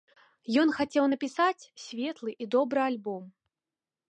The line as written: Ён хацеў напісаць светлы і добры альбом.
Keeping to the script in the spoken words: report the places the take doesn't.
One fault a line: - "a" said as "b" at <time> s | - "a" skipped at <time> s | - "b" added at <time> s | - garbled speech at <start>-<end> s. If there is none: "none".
none